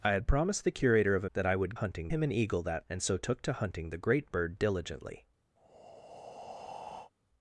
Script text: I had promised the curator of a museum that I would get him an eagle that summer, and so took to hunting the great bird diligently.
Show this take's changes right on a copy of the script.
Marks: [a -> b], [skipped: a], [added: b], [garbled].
I had promised the curator of a [skipped: museum] that I would [get -> hunting] him an eagle that [skipped: summer,] and so took to hunting the great bird diligently.